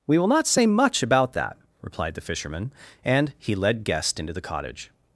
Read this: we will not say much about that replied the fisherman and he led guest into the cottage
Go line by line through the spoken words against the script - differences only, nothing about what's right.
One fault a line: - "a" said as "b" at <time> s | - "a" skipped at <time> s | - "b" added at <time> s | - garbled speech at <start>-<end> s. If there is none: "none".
none